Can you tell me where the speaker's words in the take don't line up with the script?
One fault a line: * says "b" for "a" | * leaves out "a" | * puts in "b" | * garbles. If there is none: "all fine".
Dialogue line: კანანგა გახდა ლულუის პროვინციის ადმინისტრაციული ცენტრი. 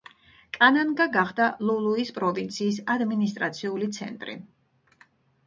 all fine